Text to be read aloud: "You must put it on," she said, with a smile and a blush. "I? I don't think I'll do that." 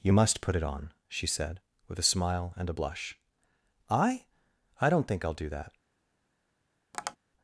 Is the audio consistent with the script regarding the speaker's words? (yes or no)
yes